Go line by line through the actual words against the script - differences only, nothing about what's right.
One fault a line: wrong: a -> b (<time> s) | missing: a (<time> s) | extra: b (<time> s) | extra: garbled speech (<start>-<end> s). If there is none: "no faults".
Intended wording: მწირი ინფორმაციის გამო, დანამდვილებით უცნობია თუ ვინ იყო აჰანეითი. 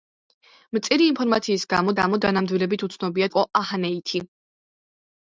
extra: გამო (2.0 s)
missing: თუ ვინ (3.3 s)